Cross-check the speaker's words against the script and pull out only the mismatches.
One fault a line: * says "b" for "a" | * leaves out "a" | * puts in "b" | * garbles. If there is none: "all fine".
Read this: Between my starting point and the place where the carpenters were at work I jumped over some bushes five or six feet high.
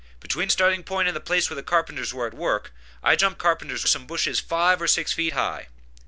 * leaves out "my"
* says "carpenters" for "over"